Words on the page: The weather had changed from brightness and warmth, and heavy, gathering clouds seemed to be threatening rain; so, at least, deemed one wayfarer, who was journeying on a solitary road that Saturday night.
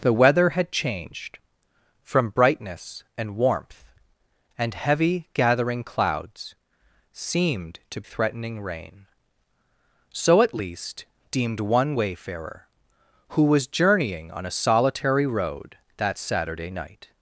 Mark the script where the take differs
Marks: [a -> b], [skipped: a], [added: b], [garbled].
The weather had changed from brightness and warmth, and heavy, gathering clouds seemed to [skipped: be] threatening rain; so, at least, deemed one wayfarer, who was journeying on a solitary road that Saturday night.